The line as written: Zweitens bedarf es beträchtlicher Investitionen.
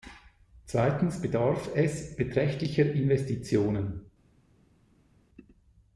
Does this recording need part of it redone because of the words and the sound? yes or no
no